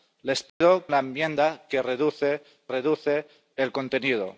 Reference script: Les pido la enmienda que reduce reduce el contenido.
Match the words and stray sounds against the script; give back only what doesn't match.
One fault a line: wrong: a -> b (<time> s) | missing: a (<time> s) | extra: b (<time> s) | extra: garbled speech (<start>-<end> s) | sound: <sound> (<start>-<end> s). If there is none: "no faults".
sound: dropout (0.5-0.6 s)